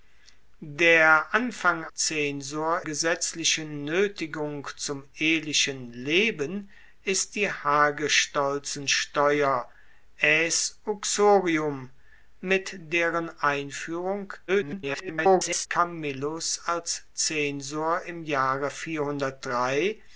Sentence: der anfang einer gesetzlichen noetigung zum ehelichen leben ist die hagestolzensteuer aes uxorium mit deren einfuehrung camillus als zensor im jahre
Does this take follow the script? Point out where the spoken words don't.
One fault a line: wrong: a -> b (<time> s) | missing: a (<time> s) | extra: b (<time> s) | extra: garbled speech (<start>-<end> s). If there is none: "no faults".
wrong: einer -> zensor (1.9 s)
extra: garbled speech (14.5-15.7 s)